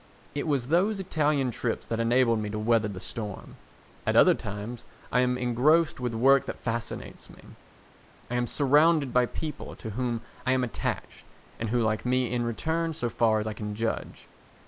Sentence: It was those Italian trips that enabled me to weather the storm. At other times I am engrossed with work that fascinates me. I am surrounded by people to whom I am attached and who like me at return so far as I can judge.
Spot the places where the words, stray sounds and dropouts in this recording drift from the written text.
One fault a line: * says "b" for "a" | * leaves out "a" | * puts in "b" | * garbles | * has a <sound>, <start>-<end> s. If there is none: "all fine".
* says "in" for "at"